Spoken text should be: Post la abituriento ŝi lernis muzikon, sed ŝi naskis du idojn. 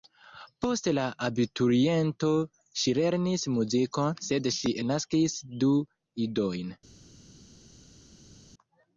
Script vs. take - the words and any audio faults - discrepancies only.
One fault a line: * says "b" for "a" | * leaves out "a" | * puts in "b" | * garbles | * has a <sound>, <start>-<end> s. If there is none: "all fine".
all fine